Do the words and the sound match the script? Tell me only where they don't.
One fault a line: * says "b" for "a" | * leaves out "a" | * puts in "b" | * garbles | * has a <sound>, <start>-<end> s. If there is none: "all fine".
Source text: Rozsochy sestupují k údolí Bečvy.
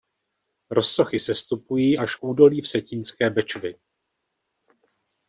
* puts in "až"
* puts in "Vsetínské"